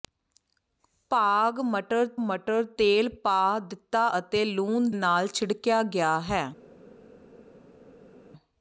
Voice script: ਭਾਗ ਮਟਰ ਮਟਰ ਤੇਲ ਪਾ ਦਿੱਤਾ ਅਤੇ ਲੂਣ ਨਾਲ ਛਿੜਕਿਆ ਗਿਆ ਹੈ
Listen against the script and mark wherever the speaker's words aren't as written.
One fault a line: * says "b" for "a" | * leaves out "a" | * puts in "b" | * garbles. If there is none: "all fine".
all fine